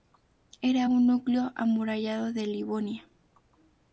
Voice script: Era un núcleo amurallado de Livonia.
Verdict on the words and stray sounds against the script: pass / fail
pass